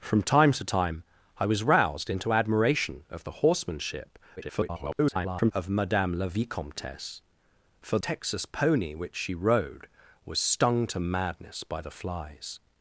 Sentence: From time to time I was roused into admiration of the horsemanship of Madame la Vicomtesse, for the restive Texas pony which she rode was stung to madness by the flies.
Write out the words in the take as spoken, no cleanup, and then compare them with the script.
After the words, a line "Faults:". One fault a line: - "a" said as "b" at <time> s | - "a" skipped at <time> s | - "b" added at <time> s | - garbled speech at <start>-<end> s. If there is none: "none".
From time to time I was roused into admiration of the horsemanship [garbled] of Madame la Vicomtesse, for Texas pony which she rode was stung to madness by the flies.
Faults:
- garbled speech at 4.4-5.5 s
- "the restive" skipped at 8.0 s